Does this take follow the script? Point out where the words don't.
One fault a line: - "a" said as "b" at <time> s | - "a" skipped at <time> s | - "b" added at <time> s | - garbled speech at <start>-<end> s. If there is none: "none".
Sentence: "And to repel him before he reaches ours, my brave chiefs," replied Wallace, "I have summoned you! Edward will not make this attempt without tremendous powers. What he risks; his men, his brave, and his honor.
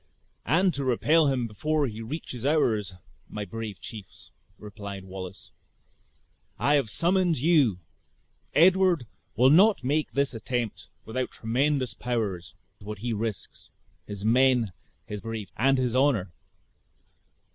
none